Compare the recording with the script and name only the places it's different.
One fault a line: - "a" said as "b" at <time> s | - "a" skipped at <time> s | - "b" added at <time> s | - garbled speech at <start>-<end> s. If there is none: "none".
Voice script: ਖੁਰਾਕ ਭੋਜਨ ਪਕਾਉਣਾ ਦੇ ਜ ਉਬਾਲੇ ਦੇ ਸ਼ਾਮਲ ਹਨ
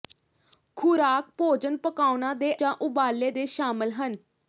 none